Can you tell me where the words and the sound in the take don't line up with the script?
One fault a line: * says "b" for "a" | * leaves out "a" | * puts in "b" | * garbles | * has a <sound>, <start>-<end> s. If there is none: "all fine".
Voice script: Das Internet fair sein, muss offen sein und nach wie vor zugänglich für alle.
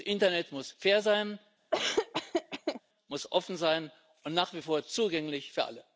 * puts in "muss"
* has a laugh, 1.7-2.8 s